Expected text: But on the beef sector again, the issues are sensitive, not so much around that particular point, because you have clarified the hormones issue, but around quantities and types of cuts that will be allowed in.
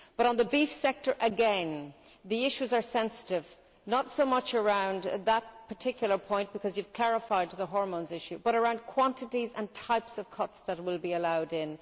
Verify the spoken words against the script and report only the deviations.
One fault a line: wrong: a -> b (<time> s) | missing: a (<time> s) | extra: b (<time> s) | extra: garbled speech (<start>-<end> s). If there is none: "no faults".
no faults